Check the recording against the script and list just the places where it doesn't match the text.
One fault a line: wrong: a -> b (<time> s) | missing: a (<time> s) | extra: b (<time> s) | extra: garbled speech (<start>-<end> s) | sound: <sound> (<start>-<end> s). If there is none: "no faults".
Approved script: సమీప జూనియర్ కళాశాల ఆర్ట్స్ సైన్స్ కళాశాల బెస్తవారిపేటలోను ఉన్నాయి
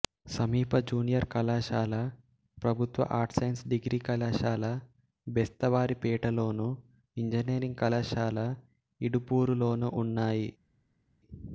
extra: ప్రభుత్వ (2.6 s)
extra: డిగ్రీ (3.7 s)
extra: ఇంజనీరింగ్ కళాశాల ఇడుపూరులోనూ (7.2 s)